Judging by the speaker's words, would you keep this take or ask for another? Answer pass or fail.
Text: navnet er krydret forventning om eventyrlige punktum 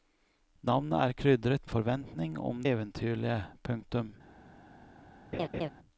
pass